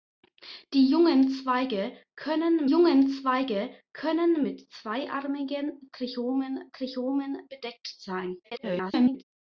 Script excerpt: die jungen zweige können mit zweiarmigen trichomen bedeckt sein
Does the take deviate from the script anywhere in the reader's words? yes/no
yes